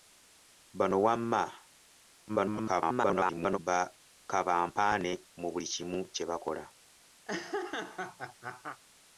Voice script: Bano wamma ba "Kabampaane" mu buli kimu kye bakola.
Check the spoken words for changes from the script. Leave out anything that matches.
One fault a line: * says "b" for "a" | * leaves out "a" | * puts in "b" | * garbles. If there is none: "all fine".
* garbles